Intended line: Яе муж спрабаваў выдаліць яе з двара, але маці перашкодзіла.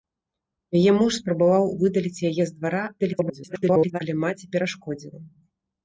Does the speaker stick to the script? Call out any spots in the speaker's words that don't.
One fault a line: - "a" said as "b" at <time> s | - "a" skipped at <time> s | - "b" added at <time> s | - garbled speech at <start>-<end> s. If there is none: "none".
- garbled speech at 3.0-4.0 s